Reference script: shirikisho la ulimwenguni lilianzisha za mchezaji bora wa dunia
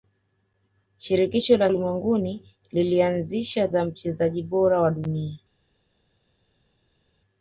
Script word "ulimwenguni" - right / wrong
right